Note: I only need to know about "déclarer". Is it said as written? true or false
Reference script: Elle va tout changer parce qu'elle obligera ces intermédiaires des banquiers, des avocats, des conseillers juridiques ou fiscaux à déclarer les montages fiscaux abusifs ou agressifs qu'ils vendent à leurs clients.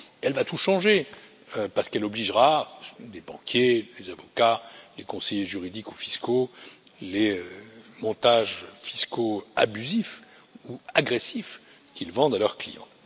false